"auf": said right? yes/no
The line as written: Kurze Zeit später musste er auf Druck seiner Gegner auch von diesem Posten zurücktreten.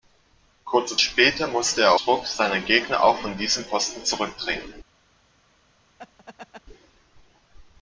no